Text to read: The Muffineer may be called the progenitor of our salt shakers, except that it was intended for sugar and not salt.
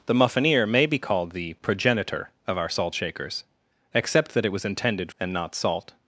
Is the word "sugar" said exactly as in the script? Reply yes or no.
no